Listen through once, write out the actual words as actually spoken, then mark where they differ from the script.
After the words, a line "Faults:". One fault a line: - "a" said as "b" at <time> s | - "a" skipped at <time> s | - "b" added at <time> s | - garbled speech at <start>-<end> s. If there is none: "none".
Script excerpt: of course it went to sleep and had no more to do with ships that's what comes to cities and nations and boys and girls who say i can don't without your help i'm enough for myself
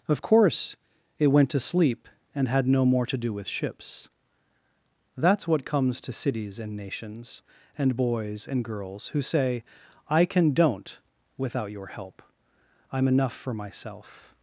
of course it went to sleep and had no more to do with ships that's what comes to cities and nations and boys and girls who say i can don't without your help i'm enough for myself
Faults:
none